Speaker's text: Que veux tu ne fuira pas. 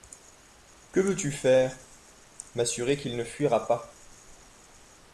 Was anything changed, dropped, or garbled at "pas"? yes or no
no